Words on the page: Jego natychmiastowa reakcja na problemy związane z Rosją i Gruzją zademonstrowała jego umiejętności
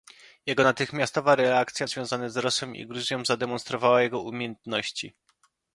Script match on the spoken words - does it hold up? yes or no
no